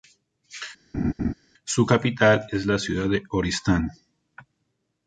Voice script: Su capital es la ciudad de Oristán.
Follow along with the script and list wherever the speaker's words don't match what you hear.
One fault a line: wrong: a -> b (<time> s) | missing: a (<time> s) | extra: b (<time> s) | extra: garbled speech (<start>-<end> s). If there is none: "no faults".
no faults